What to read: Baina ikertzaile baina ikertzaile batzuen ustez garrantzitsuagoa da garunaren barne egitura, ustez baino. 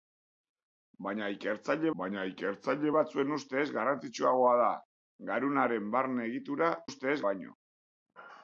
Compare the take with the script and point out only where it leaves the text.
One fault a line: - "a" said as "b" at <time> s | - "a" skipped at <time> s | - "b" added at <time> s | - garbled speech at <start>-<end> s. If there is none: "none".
none